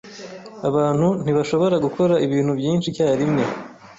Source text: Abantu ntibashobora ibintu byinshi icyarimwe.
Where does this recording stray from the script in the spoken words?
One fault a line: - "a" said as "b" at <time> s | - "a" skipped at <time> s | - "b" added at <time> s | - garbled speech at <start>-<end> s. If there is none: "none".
- "gukora" added at 1.8 s